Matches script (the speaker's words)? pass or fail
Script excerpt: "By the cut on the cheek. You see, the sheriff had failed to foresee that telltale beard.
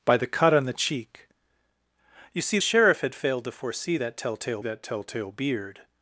fail